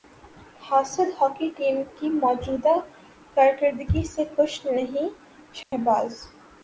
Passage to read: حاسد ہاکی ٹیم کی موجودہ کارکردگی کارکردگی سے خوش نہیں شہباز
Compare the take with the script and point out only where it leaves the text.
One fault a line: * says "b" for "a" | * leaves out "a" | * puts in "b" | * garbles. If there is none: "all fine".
* leaves out "کارکردگی"